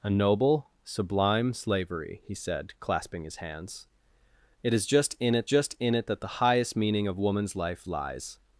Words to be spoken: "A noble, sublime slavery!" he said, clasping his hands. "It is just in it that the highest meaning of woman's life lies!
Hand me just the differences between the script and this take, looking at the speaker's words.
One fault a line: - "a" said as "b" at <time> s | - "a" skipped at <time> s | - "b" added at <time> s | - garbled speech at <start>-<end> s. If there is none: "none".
- "just in it" added at 5.4 s